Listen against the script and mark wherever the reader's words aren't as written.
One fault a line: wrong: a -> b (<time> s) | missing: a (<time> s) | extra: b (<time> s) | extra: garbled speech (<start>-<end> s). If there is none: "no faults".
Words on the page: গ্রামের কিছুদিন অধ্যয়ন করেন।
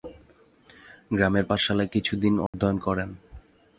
extra: পাঠশালায় (1.5 s)